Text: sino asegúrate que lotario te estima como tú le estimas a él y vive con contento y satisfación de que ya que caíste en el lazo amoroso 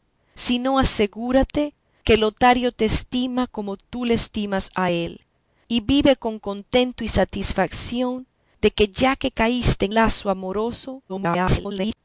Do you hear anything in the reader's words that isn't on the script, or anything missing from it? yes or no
yes